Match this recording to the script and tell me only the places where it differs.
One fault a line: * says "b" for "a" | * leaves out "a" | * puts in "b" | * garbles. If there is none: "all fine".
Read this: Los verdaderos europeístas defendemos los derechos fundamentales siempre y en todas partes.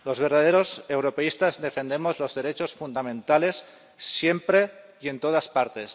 all fine